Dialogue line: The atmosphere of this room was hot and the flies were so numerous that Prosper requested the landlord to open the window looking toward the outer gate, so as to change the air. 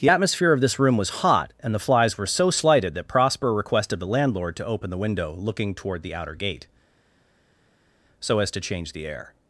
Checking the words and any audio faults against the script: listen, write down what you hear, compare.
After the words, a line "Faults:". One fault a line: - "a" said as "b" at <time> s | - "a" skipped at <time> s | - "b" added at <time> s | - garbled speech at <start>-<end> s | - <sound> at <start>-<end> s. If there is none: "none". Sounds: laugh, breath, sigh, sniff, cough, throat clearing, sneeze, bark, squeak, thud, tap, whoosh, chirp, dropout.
The atmosphere of this room was hot and the flies were so slighted that Prosper requested the landlord to open the window looking toward the outer gate, so as to change the air.
Faults:
- "numerous" said as "slighted" at 2.5 s